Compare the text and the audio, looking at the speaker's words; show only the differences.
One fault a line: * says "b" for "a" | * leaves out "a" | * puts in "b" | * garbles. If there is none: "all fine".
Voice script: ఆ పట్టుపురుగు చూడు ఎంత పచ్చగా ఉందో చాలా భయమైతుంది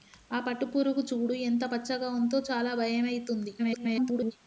* garbles